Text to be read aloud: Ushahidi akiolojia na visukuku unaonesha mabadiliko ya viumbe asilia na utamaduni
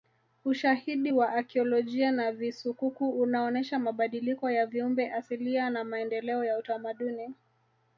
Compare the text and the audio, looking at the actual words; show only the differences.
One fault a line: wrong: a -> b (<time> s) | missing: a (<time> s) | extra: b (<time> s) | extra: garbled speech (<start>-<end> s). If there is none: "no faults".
extra: wa (1.1 s)
extra: maendeleo ya (5.8 s)